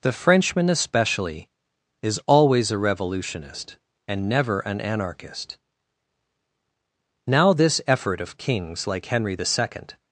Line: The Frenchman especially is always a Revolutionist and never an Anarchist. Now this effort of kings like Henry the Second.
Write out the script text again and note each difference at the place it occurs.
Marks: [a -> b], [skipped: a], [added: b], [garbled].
The Frenchman especially is always a Revolutionist and never an Anarchist. Now this effort of kings like Henry the Second.